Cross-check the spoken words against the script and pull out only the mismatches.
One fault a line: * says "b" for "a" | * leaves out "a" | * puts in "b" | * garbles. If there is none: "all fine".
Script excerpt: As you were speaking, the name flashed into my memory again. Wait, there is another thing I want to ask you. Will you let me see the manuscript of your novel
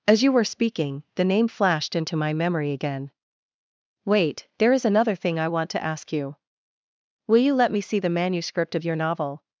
all fine